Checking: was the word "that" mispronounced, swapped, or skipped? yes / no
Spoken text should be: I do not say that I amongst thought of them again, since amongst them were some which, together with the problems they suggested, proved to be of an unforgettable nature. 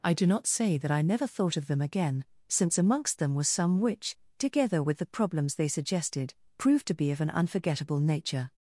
no